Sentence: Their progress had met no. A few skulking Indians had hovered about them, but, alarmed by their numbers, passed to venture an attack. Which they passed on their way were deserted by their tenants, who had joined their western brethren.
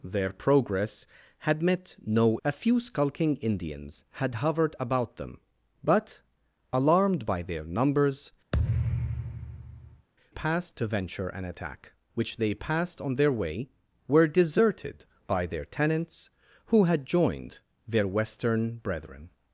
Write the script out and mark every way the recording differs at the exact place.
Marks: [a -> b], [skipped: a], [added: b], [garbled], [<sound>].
Their progress had met no. A few skulking Indians had hovered about them, but, alarmed by their numbers, [thud] passed to venture an attack. Which they passed on their way were deserted by their tenants, who had joined their western brethren.